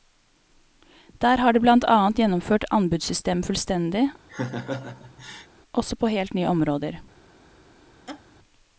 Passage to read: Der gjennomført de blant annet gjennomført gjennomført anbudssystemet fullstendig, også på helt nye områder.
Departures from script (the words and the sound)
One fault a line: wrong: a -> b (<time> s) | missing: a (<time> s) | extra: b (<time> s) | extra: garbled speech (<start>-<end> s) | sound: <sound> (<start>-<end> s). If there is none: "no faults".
wrong: gjennomført -> har (1.4 s)
missing: gjennomført (2.6 s)
sound: laugh (4.3-5.5 s)
sound: laugh (8.1-8.2 s)